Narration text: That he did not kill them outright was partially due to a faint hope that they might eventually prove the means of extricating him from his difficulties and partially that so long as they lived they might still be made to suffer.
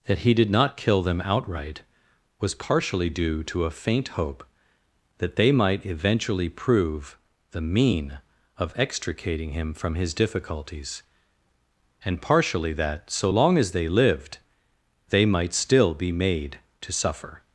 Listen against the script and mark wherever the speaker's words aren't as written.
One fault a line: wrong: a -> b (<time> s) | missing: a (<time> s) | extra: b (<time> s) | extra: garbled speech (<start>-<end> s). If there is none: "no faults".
wrong: means -> mean (7.6 s)